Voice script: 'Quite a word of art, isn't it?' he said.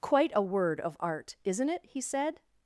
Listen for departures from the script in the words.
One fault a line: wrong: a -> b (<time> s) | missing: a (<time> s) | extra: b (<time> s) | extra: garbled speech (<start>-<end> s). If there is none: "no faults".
no faults